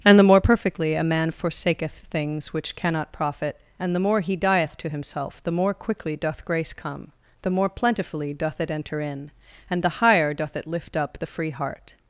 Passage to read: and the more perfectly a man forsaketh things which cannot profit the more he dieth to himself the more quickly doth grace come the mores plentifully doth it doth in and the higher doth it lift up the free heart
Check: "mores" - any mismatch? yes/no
yes